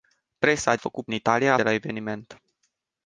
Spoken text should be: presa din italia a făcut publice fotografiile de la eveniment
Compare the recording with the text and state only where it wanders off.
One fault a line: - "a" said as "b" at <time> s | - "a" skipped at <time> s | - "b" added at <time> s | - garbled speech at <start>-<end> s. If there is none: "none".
- "din" said as "făcut" at 0.8 s
- "făcut publice fotografiile" skipped at 1.6 s